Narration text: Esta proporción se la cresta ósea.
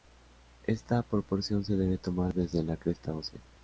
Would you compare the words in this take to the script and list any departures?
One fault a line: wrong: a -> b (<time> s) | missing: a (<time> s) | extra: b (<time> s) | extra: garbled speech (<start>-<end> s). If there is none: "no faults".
extra: debe tomar desde (1.8 s)